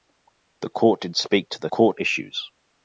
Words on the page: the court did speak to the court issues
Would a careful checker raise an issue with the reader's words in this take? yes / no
no